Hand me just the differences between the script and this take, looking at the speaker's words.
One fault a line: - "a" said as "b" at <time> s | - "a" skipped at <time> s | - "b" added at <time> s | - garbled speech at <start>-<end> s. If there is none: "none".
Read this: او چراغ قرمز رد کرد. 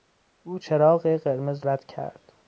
none